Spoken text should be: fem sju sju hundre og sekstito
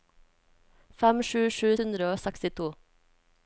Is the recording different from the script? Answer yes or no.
no